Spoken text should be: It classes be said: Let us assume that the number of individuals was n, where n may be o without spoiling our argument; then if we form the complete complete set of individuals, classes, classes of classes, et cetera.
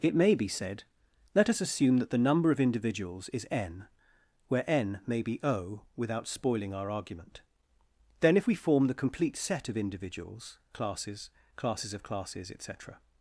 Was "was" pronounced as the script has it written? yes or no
no